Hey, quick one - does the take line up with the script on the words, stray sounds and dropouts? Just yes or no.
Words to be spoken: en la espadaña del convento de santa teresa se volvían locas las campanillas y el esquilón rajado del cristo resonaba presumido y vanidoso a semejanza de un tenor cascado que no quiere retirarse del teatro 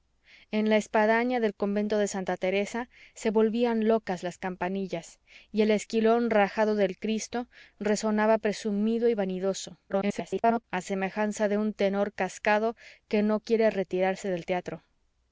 no